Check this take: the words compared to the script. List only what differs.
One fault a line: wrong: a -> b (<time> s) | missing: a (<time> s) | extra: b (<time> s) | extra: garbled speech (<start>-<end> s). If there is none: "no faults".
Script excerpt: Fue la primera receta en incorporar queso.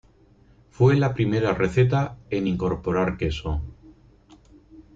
no faults